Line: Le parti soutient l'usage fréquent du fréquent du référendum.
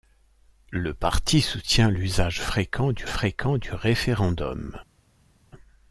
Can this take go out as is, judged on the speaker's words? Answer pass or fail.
pass